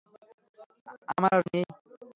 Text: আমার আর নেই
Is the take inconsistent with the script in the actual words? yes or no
no